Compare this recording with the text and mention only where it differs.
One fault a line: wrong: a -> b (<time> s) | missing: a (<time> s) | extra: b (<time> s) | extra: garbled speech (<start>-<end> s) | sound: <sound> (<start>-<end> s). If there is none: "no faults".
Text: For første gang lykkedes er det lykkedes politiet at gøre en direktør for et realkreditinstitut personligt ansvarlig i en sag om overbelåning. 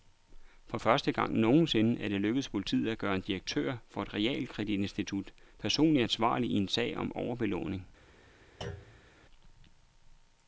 wrong: lykkedes -> nogensinde (1.3 s)
sound: thud (8.6-9.1 s)